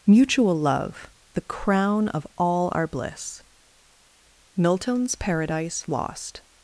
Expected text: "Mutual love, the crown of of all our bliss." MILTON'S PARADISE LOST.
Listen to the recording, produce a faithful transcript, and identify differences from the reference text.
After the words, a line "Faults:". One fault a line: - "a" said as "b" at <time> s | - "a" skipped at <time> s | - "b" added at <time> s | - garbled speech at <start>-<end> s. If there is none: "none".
"Mutual love, the crown of all our bliss." MILTON'S PARADISE LOST.
Faults:
- "of" skipped at 2.2 s